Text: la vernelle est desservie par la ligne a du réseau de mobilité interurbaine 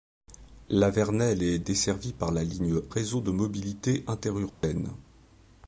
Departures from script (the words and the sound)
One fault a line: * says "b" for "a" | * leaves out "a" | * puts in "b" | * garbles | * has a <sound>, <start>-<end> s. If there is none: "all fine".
* leaves out "a du"
* has a dropout, 4.5-4.6 s